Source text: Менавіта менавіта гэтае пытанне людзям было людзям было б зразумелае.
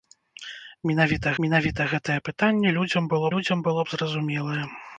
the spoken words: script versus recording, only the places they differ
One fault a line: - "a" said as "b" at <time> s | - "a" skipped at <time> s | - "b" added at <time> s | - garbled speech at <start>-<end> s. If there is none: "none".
none